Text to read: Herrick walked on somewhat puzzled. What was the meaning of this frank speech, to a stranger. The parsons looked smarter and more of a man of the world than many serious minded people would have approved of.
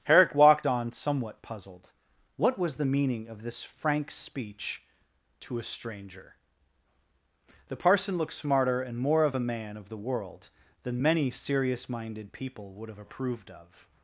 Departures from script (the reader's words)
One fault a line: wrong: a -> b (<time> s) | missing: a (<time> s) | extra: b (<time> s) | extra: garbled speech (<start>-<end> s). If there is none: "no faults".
wrong: parsons -> parson (7.8 s)